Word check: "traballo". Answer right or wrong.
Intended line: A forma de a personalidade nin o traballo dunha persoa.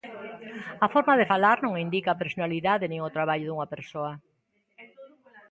right